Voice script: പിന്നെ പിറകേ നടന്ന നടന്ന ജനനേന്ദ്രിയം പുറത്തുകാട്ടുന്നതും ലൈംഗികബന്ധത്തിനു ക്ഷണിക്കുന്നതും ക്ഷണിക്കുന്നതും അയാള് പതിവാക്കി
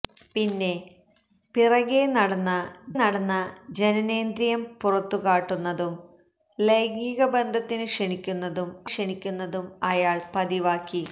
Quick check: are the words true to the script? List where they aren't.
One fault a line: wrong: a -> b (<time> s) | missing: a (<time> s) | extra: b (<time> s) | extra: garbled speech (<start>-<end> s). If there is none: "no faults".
no faults